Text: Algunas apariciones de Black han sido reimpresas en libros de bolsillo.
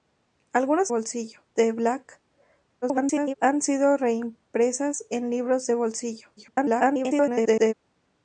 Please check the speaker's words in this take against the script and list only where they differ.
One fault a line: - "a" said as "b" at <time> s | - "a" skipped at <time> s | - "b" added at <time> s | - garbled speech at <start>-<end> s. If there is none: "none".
- "apariciones" said as "bolsillo" at 0.9 s
- garbled speech at 2.8-3.3 s
- garbled speech at 6.4-7.7 s